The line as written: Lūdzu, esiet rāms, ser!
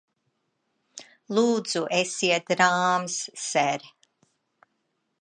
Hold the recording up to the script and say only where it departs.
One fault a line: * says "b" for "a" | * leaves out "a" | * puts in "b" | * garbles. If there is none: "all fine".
all fine